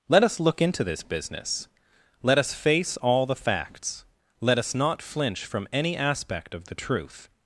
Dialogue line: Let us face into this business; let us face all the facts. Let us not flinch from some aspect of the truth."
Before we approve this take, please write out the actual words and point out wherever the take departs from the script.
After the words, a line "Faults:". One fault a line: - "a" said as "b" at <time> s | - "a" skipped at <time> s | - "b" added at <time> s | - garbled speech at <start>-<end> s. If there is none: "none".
Let us look into this business; let us face all the facts. Let us not flinch from any aspect of the truth."
Faults:
- "face" said as "look" at 0.4 s
- "some" said as "any" at 5.7 s